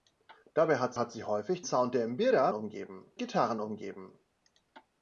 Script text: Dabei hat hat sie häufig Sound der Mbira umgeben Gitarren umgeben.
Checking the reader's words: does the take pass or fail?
pass